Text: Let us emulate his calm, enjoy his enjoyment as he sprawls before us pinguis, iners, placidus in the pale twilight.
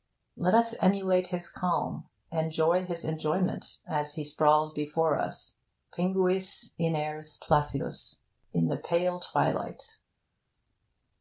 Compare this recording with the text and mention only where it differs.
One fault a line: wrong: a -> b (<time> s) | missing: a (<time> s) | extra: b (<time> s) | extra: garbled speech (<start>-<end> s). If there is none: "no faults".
no faults